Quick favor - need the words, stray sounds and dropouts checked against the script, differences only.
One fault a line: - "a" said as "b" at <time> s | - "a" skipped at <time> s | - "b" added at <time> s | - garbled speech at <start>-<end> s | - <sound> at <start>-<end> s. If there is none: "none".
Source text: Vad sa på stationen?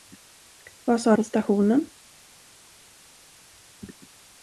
none